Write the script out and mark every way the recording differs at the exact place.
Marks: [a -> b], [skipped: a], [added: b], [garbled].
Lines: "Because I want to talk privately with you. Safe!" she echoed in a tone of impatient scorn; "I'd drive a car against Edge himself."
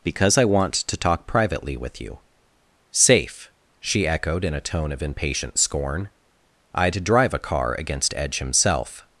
"Because I want to talk privately with you. Safe!" she echoed in a tone of impatient scorn; "I'd drive a car against Edge himself."